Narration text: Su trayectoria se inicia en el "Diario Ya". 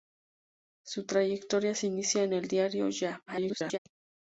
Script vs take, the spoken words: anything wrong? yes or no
yes